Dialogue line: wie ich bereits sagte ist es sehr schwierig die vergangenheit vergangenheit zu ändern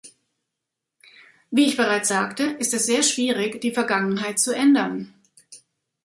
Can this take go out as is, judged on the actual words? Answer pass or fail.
fail